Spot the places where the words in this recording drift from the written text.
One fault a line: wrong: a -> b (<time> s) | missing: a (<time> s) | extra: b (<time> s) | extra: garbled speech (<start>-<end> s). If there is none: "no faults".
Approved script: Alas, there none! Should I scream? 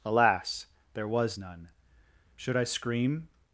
extra: was (1.1 s)